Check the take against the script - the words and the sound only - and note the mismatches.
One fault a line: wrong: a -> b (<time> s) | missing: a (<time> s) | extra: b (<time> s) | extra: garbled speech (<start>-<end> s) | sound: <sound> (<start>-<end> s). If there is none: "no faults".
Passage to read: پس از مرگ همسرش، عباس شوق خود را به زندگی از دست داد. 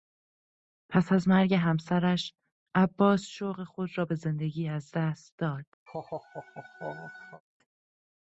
sound: laugh (5.9-7.4 s)